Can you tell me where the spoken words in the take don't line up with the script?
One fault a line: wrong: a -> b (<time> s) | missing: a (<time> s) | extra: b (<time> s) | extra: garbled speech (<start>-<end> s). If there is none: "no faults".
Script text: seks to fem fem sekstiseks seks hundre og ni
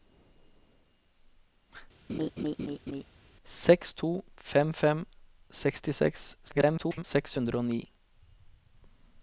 extra: garbled speech (6.5-7.0 s)